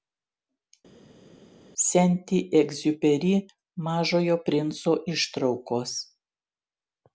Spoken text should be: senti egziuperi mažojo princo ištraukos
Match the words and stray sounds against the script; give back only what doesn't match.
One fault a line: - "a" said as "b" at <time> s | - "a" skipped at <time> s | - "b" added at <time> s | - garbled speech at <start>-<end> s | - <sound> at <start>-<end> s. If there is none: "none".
none